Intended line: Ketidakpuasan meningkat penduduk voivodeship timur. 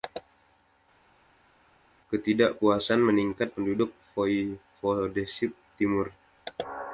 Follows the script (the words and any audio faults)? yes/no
yes